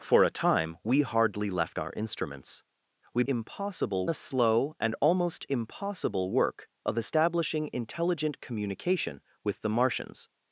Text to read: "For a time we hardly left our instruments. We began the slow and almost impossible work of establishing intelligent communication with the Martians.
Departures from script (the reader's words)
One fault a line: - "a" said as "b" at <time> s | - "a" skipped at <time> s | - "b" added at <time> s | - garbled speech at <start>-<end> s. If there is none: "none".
- "began" said as "impossible" at 3.3 s